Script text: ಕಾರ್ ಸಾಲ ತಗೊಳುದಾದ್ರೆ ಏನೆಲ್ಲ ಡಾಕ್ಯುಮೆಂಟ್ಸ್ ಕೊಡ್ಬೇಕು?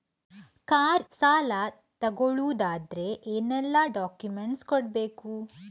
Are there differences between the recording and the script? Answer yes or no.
no